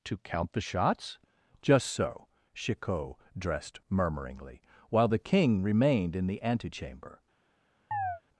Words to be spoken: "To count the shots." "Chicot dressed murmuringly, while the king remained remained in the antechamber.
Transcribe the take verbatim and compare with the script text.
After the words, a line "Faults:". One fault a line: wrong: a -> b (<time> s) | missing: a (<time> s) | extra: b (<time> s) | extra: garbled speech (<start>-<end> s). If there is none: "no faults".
"To count the shots?" "Just so." Chicot dressed murmuringly, while the king remained in the antechamber.
Faults:
extra: Just so (1.6 s)
missing: remained (6.2 s)